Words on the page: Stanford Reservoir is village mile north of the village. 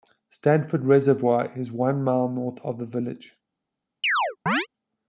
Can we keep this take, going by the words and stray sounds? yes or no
no